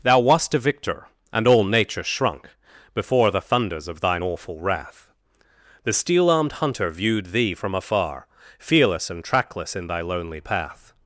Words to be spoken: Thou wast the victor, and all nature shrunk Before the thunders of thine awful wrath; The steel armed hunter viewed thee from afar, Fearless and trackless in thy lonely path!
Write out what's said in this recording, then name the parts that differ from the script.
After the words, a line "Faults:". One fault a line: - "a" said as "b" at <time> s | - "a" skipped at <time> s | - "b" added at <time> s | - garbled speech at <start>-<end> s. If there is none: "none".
Thou wast a victor, and all nature shrunk Before the thunders of thine awful wrath; The steel armed hunter viewed thee from afar, Fearless and trackless in thy lonely path!
Faults:
- "the" said as "a" at 0.5 s